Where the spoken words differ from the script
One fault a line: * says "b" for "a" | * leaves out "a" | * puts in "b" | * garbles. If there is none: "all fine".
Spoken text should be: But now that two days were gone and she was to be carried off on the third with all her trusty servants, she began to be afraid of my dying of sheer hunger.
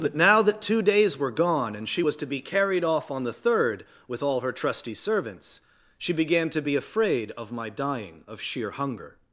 all fine